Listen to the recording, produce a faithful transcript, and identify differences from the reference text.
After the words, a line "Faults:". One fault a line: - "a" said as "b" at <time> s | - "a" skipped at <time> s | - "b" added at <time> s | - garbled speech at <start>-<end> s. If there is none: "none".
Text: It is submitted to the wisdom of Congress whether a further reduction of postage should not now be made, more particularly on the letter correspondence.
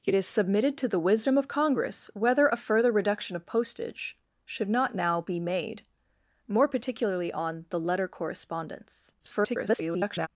It is submitted to the wisdom of Congress whether a further reduction of postage should not now be made, more particularly on the letter correspondence. [garbled]
Faults:
- garbled speech at 9.2-10.3 s